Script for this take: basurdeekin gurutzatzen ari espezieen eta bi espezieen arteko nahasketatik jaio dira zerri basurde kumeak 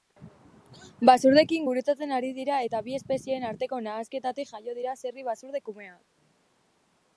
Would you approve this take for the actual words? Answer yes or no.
no